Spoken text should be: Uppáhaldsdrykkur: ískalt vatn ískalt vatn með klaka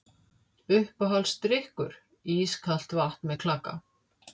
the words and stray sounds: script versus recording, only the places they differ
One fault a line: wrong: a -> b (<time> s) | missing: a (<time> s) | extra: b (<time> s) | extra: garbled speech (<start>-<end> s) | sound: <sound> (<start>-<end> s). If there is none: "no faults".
missing: ískalt vatn (3.3 s)